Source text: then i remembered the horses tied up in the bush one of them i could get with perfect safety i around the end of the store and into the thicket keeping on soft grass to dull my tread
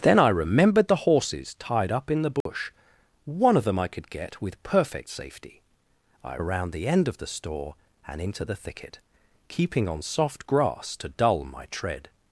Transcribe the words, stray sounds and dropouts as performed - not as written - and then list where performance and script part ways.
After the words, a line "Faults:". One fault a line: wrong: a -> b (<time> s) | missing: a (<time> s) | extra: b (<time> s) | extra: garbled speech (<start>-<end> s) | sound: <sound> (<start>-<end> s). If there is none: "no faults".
then i remembered the horses tied up in the bush one of them i could get with perfect safety i around the end of the store and into the thicket keeping on soft grass to dull my tread
Faults:
sound: dropout (2.4-2.5 s)